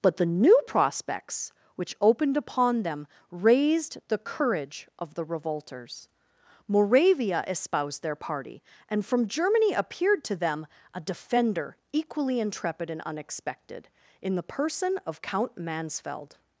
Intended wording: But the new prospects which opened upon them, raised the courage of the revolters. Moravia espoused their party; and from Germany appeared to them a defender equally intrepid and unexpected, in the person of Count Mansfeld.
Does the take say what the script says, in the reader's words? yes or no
yes